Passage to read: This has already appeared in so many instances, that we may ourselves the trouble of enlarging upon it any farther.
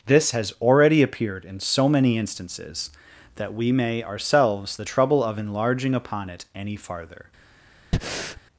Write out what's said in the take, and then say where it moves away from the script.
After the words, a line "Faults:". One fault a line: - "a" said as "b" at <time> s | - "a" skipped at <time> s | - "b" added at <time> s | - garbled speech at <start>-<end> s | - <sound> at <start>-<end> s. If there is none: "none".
This has already appeared in so many instances, that we may ourselves the trouble of enlarging upon it any farther.
Faults:
- breath at 7.9-8.4 s